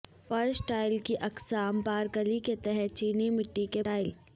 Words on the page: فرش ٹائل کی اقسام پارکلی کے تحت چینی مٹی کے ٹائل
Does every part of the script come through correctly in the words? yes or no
yes